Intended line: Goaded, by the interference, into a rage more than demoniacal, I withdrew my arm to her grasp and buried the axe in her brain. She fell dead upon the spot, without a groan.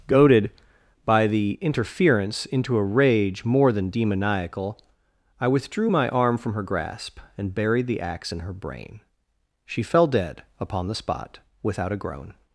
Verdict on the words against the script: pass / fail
fail